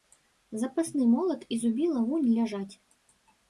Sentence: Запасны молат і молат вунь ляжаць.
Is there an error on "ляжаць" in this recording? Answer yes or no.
no